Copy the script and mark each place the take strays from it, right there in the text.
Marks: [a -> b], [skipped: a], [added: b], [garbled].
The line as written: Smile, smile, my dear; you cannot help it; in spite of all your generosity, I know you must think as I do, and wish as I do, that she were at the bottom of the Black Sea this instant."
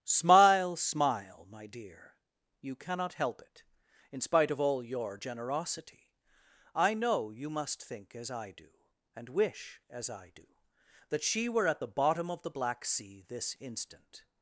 Smile, smile, my dear; you cannot help it; in spite of all your generosity, I know you must think as I do, and wish as I do, that she were at the bottom of the Black Sea this instant."